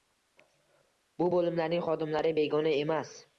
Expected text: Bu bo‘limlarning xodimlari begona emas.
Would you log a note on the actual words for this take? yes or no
no